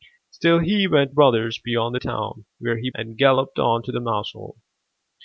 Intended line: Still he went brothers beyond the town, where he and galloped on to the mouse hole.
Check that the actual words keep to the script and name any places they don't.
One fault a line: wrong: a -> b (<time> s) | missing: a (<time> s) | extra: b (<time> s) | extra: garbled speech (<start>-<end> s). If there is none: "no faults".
no faults